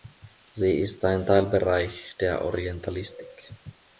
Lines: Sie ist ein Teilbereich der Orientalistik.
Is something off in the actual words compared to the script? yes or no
no